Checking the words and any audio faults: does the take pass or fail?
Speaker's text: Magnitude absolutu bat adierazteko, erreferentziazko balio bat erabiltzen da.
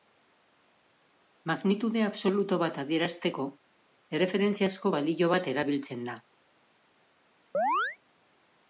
fail